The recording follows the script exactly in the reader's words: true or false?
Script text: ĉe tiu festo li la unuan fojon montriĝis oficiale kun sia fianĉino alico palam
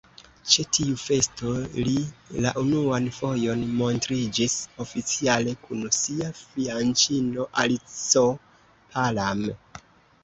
true